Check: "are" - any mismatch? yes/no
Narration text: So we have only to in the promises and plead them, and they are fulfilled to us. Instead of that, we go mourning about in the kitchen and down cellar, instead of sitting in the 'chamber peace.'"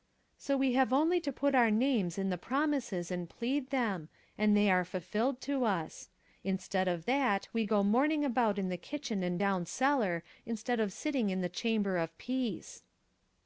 no